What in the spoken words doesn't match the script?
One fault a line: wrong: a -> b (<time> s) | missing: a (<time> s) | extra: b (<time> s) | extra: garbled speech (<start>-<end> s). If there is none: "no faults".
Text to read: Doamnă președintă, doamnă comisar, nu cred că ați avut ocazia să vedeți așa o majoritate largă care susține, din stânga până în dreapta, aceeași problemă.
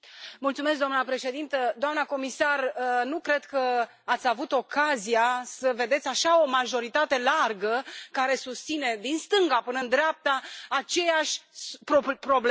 no faults